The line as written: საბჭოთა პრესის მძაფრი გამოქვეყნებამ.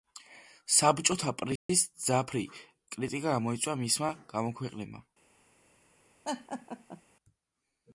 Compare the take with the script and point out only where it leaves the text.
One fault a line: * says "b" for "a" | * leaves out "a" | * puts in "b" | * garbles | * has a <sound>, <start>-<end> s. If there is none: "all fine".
* has a dropout, 1.6-1.7 s
* puts in "კრიტიკა გამოიწვია მისმა"
* has a laugh, 6.2-7.0 s